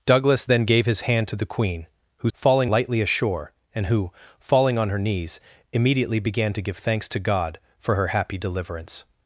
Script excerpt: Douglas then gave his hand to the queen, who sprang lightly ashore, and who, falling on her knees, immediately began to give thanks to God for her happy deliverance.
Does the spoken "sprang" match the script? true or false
false